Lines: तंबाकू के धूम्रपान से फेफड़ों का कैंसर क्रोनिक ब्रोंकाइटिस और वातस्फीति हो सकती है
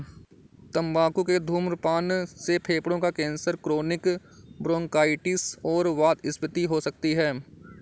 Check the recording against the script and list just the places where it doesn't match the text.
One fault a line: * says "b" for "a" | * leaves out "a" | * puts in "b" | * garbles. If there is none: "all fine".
all fine